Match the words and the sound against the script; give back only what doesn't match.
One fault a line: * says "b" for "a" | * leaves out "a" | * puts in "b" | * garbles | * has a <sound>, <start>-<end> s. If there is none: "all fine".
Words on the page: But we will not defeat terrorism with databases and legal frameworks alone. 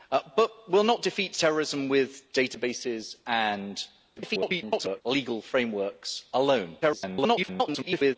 * garbles
* garbles